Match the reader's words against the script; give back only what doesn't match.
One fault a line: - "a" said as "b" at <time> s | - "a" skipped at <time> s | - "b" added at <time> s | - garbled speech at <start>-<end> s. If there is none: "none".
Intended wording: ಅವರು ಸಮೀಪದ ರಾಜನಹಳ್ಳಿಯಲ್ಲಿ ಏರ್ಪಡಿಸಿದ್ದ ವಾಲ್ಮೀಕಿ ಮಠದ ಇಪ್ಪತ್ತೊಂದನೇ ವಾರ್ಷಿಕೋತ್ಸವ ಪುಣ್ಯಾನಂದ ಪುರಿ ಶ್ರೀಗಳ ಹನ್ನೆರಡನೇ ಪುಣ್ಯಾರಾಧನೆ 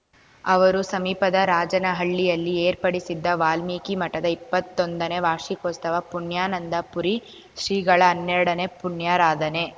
none